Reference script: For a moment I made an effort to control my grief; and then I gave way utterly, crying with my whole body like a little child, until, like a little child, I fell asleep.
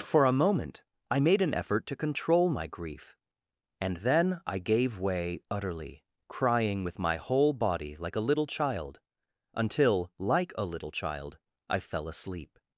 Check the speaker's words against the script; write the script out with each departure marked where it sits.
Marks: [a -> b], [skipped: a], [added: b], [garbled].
For a moment I made an effort to control my grief; and then I gave way utterly, crying with my whole body like a little child, until, like a little child, I fell asleep.